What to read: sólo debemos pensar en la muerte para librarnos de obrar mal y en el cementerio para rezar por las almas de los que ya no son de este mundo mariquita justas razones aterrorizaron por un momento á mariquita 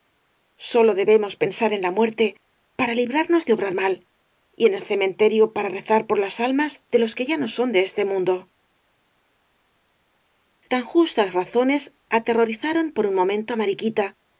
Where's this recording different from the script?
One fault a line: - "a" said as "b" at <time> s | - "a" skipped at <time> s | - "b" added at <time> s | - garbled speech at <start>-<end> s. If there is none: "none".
- "mariquita" said as "tan" at 10.7 s